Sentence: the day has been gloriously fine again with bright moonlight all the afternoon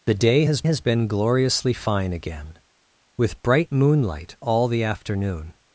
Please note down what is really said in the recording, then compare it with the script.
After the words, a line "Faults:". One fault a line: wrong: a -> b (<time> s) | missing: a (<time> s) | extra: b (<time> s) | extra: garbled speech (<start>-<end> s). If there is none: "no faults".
the day has has been gloriously fine again with bright moonlight all the afternoon
Faults:
extra: has (0.6 s)